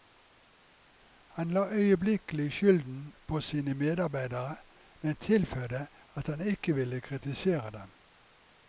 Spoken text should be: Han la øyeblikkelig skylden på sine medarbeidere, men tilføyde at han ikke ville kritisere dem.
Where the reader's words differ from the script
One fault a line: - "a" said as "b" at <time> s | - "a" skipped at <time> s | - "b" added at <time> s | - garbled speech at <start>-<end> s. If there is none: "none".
none